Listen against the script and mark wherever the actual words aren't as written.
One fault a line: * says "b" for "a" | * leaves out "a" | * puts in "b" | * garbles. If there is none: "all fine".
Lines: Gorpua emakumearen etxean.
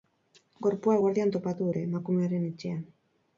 * puts in "eguerdian topatu dute"